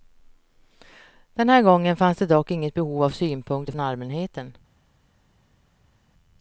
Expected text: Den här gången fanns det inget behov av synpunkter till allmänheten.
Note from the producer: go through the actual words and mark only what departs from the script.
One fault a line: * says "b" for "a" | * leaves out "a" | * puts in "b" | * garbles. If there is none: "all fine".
* puts in "dock"
* says "från" for "till"